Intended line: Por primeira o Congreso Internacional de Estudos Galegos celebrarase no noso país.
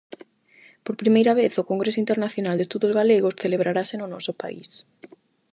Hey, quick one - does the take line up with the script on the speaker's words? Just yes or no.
no